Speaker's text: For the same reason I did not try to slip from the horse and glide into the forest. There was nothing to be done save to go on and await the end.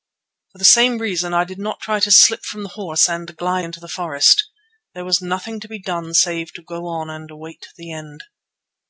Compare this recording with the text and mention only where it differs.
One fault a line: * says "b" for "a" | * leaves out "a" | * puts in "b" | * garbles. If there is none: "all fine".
all fine